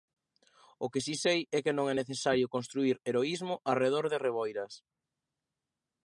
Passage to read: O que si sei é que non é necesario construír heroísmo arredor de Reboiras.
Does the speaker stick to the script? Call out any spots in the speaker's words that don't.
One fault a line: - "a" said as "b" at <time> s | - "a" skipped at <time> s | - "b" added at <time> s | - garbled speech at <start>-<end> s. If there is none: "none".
none